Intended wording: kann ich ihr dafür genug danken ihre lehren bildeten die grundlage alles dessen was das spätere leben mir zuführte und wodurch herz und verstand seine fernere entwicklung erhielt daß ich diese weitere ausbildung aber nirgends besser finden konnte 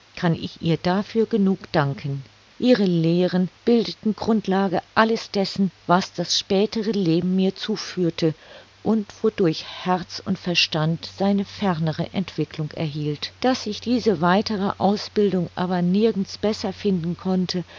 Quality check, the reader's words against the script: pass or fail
fail